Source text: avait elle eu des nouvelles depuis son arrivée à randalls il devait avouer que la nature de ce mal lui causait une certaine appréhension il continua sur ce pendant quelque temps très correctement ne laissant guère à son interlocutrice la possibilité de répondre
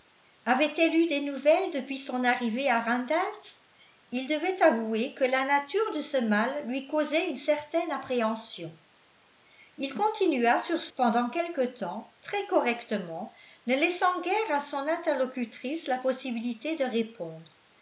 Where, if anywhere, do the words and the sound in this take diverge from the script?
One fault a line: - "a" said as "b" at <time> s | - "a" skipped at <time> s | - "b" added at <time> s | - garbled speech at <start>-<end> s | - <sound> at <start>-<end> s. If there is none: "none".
none